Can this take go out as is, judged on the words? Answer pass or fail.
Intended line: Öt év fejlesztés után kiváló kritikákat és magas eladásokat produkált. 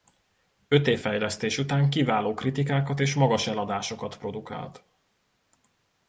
pass